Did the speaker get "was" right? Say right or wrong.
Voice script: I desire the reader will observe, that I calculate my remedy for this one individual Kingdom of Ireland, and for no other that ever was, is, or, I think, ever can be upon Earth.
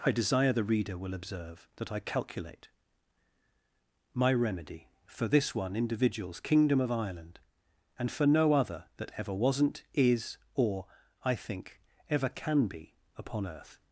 wrong